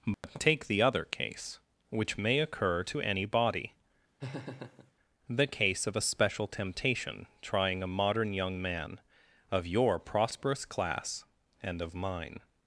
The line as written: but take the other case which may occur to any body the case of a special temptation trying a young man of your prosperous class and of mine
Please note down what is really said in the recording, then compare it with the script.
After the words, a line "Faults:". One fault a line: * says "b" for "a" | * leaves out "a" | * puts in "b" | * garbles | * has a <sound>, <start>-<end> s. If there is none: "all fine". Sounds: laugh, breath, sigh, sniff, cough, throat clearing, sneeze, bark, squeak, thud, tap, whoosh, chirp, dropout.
but take the other case which may occur to any body the case of a special temptation trying a modern young man of your prosperous class and of mine
Faults:
* has a dropout, 0.1-0.2 s
* has a laugh, 4.2-4.9 s
* puts in "modern"